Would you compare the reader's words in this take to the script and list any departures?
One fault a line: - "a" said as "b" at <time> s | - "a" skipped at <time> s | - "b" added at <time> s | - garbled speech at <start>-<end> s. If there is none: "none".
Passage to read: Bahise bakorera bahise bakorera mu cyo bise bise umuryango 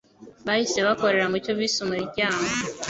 - "bahise bakorera" skipped at 1.2 s
- "bise" skipped at 1.8 s